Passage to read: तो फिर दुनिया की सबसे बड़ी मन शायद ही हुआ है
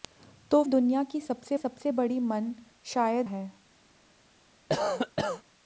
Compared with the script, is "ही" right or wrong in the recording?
wrong